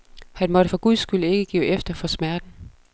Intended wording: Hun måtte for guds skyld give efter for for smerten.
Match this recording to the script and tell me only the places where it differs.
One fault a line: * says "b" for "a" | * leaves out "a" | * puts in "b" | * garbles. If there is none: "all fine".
* says "Han" for "Hun"
* puts in "ikke"
* leaves out "for"